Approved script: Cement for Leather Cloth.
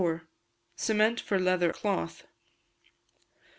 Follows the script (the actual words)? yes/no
yes